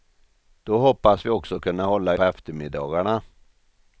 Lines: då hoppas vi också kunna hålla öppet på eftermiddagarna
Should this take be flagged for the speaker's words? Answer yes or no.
yes